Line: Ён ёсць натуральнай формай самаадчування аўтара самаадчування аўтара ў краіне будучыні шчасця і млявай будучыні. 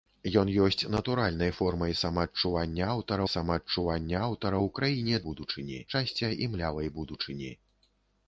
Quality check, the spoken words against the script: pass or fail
pass